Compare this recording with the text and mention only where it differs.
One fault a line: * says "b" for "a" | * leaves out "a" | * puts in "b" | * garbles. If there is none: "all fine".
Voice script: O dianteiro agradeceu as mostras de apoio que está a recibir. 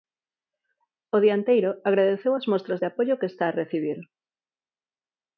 all fine